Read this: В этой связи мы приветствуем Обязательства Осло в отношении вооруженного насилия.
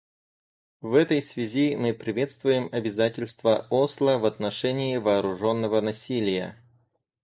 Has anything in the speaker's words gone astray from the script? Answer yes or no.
no